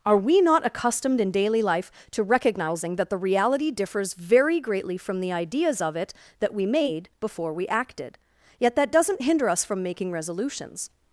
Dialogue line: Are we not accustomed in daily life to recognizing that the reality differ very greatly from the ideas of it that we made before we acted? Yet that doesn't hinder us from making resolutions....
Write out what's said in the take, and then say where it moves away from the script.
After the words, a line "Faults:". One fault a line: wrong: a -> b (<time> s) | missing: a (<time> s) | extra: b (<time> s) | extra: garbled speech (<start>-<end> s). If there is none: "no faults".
Are we not accustomed in daily life to recognizing that the reality differs very greatly from the ideas of it that we made before we acted? Yet that doesn't hinder us from making resolutions....
Faults:
wrong: differ -> differs (3.7 s)